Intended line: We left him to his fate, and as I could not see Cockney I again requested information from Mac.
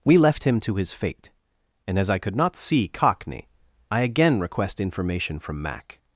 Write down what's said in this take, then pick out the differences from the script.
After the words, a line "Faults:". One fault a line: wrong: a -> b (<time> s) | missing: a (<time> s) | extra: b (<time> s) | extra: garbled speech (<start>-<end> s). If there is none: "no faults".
We left him to his fate, and as I could not see Cockney I again request information from Mac.
Faults:
wrong: requested -> request (4.4 s)